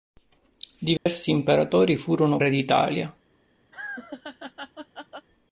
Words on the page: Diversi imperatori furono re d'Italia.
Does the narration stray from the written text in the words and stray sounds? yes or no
yes